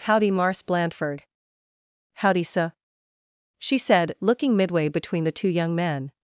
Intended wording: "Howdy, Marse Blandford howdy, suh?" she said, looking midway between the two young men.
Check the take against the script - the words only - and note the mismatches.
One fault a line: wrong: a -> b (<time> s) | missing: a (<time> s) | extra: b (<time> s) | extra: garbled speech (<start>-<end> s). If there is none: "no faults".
no faults